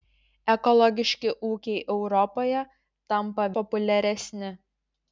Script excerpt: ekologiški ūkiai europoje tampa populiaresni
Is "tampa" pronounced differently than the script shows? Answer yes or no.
no